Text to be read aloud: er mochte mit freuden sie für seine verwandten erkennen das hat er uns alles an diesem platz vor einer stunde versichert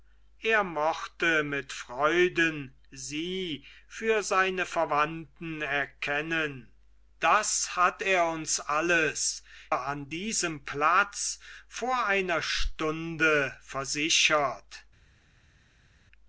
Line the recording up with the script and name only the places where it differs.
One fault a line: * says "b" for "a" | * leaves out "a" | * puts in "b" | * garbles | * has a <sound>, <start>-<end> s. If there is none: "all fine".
all fine